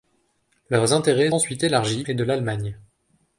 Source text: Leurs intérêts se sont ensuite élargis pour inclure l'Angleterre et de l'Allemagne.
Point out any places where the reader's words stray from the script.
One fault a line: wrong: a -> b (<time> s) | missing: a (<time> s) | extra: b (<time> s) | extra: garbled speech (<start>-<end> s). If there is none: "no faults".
missing: se sont (1.3 s)
missing: pour inclure l'Angleterre (2.1 s)